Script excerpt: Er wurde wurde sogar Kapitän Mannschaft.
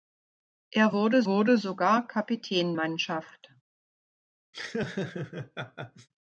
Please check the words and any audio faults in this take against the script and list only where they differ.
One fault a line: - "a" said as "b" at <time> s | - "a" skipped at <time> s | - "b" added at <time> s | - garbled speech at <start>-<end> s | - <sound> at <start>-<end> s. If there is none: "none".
- laugh at 4.5-6.1 s